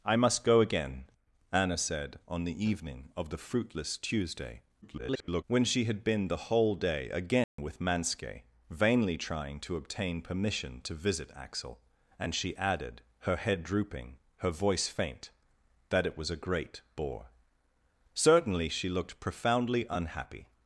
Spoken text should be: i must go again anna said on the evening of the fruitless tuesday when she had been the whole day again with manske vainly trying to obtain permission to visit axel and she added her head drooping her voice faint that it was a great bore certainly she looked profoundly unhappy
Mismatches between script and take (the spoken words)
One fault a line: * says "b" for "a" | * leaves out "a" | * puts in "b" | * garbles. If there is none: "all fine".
* garbles